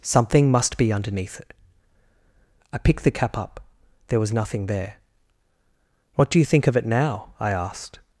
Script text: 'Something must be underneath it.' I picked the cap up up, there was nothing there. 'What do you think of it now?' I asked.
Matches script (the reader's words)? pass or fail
fail